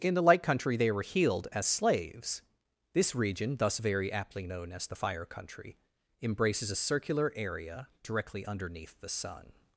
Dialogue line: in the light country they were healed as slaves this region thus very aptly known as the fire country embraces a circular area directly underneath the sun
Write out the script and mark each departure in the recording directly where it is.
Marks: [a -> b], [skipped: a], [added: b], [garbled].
in the light country they were healed as slaves this region thus very aptly known as the fire country embraces a circular area directly underneath the sun